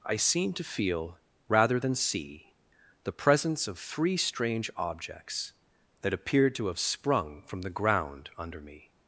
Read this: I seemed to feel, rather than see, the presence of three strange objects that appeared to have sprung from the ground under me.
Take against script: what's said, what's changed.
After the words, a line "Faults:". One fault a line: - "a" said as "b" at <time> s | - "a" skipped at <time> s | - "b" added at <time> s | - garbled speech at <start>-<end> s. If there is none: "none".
I seemed to feel, rather than see, the presence of three strange objects that appeared to have sprung from the ground under me.
Faults:
none